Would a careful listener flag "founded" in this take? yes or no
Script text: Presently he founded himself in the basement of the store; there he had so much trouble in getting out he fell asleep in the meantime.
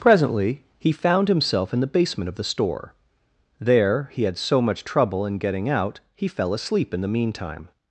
yes